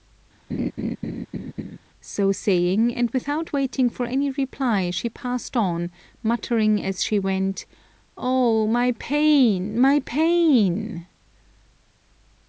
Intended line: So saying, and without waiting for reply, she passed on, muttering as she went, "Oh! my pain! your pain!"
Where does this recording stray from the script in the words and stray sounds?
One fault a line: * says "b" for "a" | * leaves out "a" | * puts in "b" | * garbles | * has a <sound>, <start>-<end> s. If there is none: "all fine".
* has a laugh, 0.5-1.8 s
* puts in "any"
* says "my" for "your"